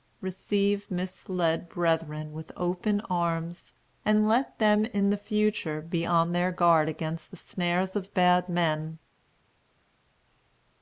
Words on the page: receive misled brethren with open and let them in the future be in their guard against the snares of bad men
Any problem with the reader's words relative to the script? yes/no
yes